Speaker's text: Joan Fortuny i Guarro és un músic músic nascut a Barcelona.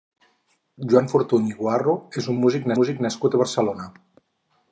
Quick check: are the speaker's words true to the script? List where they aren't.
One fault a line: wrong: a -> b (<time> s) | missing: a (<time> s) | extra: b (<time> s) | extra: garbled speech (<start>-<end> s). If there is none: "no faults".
no faults